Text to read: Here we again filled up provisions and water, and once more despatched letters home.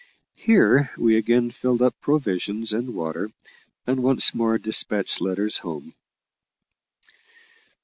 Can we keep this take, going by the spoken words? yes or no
yes